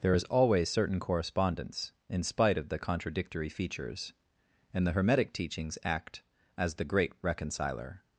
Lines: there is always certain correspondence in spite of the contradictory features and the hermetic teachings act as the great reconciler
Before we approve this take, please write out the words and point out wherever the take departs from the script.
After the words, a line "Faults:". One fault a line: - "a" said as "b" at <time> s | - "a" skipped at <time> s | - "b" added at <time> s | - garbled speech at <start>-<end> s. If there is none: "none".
there is always certain correspondence in spite of the contradictory features and the hermetic teachings act as the great reconciler
Faults:
none